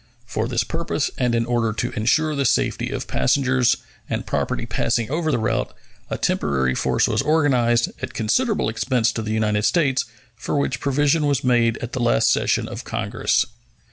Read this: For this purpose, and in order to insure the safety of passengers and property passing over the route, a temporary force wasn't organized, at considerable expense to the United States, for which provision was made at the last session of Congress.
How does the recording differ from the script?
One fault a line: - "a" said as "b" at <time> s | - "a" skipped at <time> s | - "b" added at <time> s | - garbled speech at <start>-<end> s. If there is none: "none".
- "wasn't" said as "was" at 7.1 s